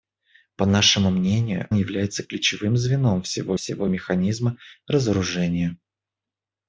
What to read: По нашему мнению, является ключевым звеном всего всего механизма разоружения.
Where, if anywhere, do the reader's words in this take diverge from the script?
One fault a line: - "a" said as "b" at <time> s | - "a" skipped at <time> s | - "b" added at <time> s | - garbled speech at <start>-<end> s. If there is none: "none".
none